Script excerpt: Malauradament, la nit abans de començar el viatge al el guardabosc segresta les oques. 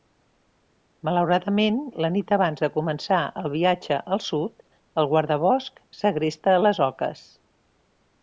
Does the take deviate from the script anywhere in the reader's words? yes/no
yes